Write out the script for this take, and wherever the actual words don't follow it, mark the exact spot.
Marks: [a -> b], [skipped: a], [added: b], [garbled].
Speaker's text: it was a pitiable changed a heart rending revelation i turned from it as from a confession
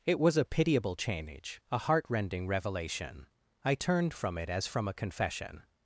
it was a pitiable [changed -> change] a heart rending revelation i turned from it as from a confession